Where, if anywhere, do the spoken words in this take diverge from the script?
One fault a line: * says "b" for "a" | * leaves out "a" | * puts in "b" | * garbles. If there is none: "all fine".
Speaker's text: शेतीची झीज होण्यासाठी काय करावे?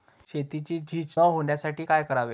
all fine